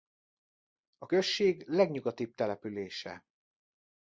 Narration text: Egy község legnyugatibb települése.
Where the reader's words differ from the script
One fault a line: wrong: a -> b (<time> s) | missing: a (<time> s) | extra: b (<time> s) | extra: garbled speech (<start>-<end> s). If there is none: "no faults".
wrong: Egy -> A (1.0 s)